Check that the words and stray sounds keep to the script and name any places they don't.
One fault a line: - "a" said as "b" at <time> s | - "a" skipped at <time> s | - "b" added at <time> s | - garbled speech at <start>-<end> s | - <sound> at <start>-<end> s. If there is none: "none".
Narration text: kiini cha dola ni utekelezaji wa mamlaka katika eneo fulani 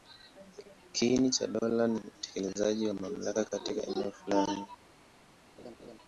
- laugh at 5.6-6.0 s